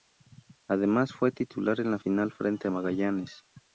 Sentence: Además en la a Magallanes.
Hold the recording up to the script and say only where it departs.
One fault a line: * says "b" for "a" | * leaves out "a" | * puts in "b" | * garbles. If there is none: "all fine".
* puts in "fue titular"
* puts in "final frente"